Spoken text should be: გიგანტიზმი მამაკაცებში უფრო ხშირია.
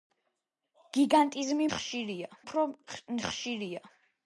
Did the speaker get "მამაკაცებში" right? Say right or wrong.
wrong